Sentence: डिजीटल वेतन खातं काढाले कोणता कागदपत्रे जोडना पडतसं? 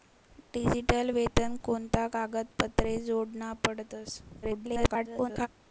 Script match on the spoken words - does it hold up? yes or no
no